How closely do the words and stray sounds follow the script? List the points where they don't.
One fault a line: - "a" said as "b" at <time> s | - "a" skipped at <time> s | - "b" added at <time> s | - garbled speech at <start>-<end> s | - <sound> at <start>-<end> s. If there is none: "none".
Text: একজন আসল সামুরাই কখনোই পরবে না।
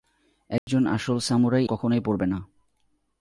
- dropout at 0.6-0.7 s